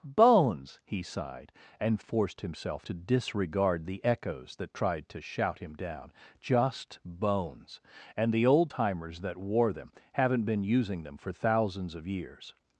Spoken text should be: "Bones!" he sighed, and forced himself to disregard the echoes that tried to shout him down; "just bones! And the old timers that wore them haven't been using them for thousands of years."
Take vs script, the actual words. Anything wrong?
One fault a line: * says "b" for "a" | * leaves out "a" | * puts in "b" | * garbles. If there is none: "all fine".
all fine